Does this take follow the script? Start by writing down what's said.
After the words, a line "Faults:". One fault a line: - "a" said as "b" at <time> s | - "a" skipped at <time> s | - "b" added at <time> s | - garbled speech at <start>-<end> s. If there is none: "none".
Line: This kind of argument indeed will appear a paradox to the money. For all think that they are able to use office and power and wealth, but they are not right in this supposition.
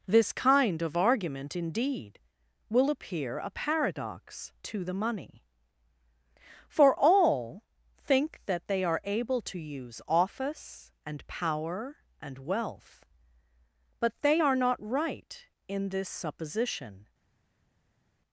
This kind of argument indeed will appear a paradox to the money. For all think that they are able to use office and power and wealth, but they are not right in this supposition.
Faults:
none